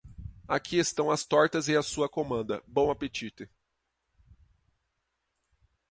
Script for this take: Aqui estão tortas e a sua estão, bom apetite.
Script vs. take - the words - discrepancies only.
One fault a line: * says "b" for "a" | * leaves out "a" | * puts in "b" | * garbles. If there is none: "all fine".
* puts in "as"
* says "comanda" for "estão"